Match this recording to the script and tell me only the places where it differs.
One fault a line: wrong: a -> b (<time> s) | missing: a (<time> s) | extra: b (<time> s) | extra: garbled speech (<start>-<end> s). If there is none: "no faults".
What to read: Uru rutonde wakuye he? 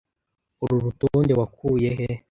no faults